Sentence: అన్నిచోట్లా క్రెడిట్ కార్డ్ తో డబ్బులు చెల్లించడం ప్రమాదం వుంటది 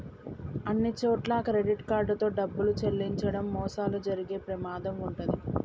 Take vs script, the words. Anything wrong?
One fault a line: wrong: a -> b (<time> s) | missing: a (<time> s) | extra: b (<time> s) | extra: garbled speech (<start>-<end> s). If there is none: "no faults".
extra: మోసాలు జరిగే (3.5 s)